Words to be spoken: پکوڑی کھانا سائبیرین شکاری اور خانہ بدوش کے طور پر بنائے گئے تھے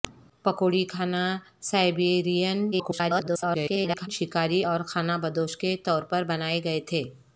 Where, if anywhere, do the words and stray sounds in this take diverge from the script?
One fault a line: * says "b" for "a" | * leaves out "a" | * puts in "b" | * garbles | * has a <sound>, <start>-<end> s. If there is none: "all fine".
* garbles